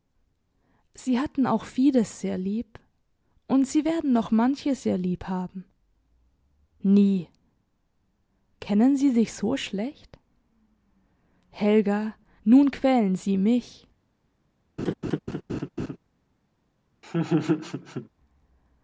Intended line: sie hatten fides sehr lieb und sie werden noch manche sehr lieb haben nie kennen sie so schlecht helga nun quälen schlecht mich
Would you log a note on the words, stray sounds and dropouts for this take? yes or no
yes